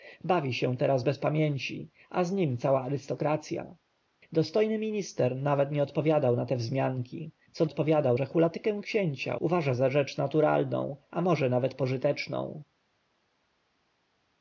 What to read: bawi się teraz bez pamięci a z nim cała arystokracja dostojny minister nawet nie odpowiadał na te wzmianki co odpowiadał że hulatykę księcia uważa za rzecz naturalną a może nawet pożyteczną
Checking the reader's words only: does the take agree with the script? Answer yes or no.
yes